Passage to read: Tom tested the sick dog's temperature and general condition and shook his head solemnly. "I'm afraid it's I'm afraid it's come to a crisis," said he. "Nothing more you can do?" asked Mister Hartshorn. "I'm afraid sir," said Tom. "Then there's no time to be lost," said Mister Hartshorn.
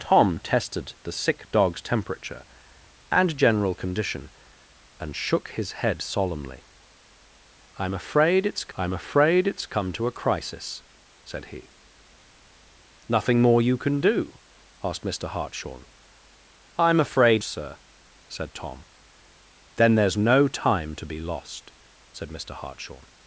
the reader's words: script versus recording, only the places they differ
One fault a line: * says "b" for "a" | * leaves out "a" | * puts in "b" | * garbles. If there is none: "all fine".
all fine